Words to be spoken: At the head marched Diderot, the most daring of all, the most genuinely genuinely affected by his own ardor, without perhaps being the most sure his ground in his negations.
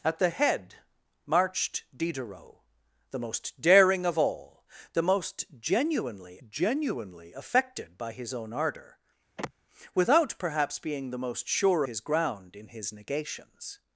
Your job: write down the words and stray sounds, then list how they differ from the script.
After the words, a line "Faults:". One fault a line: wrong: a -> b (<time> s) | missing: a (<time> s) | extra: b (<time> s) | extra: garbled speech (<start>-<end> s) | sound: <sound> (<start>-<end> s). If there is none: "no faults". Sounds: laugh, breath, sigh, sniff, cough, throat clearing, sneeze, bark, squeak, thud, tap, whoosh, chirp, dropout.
At the head marched Diderot, the most daring of all, the most genuinely genuinely affected by his own ardor, without perhaps being the most sure his ground in his negations.
Faults:
sound: sigh (9.4-9.5 s)